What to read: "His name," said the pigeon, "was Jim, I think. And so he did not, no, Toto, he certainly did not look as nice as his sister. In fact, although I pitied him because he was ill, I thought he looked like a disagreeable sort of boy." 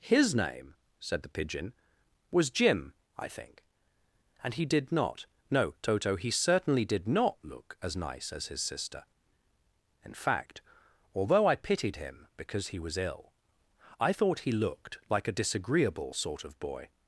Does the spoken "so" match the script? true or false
false